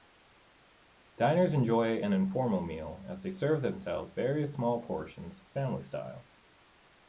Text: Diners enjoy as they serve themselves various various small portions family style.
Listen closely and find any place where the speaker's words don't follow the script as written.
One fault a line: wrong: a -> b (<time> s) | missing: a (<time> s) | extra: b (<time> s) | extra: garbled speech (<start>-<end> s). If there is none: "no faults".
extra: an informal meal (2.0 s)
missing: various (4.5 s)